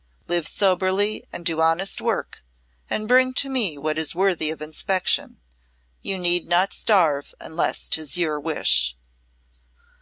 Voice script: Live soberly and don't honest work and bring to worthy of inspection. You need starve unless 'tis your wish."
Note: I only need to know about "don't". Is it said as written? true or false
false